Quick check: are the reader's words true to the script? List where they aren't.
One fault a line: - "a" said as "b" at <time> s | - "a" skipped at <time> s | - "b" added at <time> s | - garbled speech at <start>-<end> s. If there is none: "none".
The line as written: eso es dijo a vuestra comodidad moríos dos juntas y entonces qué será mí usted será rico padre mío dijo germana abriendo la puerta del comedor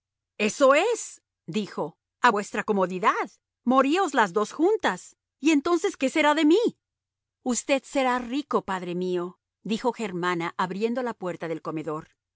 - "las" added at 4.1 s
- "de" added at 6.4 s